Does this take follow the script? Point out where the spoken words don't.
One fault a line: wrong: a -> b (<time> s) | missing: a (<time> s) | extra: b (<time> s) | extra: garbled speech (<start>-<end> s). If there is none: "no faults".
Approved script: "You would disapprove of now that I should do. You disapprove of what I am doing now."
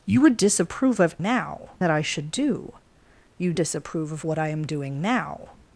no faults